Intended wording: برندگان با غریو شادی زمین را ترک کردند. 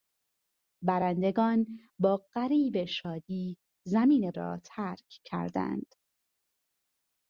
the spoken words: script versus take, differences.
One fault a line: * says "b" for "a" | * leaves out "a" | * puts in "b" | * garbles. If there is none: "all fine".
all fine